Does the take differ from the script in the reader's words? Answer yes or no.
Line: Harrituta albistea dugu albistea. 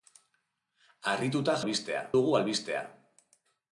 no